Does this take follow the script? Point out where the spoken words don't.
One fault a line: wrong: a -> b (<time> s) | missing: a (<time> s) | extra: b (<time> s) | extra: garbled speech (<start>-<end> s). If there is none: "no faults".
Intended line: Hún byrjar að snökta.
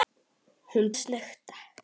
missing: byrjar (0.9 s)